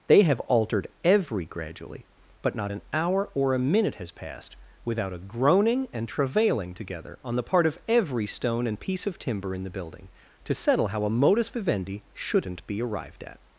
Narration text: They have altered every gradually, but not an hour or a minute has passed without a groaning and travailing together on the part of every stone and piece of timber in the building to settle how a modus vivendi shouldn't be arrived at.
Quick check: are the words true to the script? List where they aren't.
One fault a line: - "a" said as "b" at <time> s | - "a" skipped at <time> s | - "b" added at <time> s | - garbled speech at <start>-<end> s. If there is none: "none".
none